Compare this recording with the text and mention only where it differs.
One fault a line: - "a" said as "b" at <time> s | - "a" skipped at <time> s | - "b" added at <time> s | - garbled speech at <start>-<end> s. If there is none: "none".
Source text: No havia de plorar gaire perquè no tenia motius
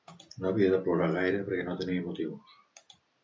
none